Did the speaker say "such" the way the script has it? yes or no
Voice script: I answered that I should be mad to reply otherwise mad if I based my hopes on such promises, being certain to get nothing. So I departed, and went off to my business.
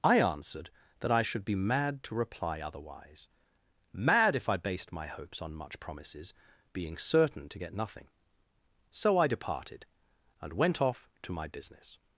no